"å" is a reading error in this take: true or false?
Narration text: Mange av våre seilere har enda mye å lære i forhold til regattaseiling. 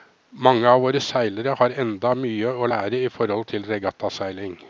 false